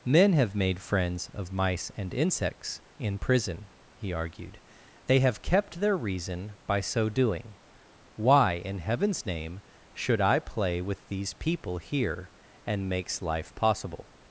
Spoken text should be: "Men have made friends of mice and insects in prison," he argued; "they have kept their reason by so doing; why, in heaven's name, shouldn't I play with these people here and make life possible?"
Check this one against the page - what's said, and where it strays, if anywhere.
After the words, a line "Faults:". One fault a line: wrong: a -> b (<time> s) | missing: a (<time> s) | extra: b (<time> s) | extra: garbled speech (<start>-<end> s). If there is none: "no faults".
"Men have made friends of mice and insects in prison," he argued; "they have kept their reason by so doing; why, in heaven's name, should I play with these people here and makes life possible?"
Faults:
wrong: shouldn't -> should (9.9 s)
wrong: make -> makes (12.9 s)